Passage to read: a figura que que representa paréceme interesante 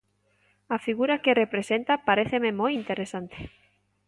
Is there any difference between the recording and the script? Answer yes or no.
yes